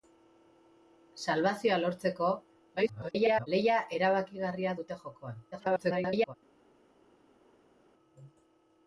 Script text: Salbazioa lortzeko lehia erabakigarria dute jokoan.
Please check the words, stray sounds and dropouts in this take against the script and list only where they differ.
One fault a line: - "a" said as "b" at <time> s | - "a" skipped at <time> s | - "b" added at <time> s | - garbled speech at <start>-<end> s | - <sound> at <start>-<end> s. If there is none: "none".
- garbled speech at 2.8-3.5 s
- garbled speech at 5.5-6.3 s